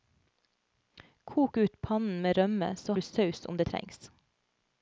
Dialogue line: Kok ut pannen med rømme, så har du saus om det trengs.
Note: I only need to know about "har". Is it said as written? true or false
false